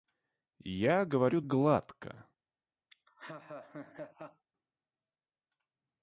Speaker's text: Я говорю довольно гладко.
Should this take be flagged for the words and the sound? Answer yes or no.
yes